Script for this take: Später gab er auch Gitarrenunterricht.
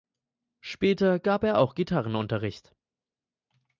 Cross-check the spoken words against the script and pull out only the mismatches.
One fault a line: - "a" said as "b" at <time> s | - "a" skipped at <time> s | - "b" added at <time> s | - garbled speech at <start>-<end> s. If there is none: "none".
none